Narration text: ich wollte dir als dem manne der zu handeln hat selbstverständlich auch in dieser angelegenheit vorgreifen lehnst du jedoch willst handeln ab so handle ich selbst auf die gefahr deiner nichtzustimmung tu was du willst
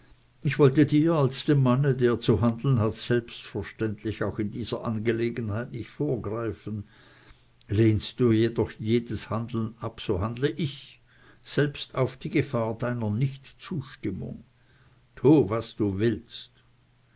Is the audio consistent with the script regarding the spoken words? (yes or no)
no